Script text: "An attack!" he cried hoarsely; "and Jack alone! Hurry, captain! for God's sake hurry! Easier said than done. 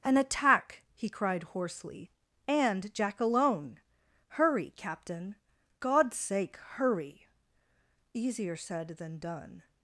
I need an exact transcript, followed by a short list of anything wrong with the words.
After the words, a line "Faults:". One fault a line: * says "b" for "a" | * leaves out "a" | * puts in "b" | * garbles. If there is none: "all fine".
"An attack!" he cried hoarsely; "and Jack alone! Hurry, captain! God's sake hurry! Easier said than done.
Faults:
* leaves out "for"